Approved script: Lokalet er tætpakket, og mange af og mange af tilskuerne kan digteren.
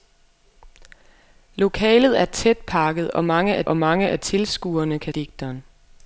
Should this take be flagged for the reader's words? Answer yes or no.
no